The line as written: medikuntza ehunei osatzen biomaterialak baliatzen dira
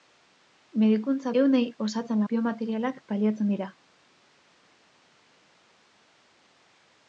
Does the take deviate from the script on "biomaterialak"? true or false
false